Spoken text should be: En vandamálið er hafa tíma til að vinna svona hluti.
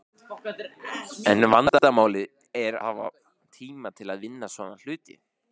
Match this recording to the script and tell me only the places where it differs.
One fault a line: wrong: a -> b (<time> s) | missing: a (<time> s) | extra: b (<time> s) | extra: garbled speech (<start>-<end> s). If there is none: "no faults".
no faults